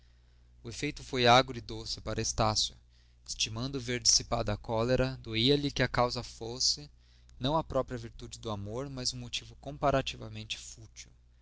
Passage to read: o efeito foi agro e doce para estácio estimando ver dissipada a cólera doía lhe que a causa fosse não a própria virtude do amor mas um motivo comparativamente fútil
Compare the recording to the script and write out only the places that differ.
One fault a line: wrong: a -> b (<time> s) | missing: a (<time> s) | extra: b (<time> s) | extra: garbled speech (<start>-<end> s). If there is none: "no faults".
no faults